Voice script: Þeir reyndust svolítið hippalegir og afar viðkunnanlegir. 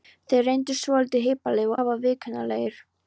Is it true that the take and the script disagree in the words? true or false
true